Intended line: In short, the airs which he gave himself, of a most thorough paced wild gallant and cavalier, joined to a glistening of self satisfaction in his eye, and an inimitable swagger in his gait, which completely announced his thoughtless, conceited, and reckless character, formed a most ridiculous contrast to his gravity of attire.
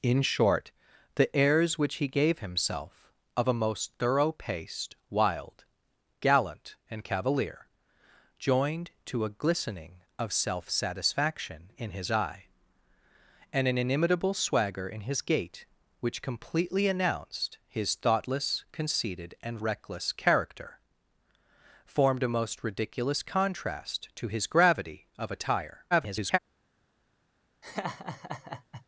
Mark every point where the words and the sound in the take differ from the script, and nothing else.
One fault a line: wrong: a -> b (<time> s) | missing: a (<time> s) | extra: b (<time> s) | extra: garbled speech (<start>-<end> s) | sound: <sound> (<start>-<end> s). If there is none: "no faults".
extra: garbled speech (25.9-26.4 s)
sound: laugh (27.6-28.9 s)